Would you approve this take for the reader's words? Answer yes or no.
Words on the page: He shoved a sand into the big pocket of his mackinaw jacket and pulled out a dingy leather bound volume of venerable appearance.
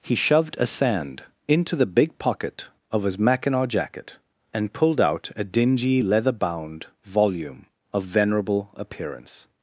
yes